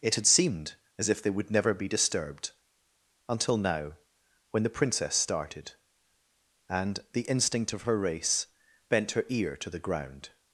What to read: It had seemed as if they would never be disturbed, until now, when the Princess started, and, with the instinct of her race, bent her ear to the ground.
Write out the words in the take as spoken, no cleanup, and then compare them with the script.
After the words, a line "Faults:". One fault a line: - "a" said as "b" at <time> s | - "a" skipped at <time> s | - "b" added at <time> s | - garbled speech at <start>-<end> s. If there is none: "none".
It had seemed as if they would never be disturbed, until now, when the Princess started, and, the instinct of her race, bent her ear to the ground.
Faults:
- "with" skipped at 7.0 s